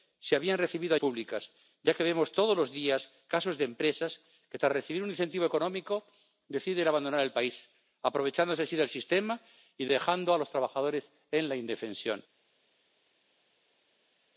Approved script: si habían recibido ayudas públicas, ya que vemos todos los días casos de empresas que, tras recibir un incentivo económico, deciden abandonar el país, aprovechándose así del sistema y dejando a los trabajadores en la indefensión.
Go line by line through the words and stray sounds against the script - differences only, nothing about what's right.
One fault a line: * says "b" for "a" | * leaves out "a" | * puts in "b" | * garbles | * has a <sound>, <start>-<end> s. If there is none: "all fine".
* leaves out "ayudas"